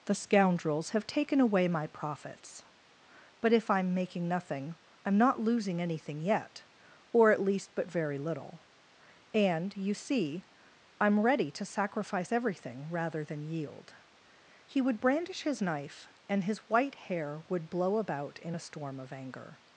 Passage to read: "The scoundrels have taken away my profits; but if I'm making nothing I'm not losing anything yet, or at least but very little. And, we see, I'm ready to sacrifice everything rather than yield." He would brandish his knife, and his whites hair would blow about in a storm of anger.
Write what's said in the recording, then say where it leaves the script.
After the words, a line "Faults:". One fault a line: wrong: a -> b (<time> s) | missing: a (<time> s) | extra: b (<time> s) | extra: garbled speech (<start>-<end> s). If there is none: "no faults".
"The scoundrels have taken away my profits; but if I'm making nothing I'm not losing anything yet, or at least but very little. And, you see, I'm ready to sacrifice everything rather than yield." He would brandish his knife, and his white hair would blow about in a storm of anger.
Faults:
wrong: we -> you (9.8 s)
wrong: whites -> white (16.7 s)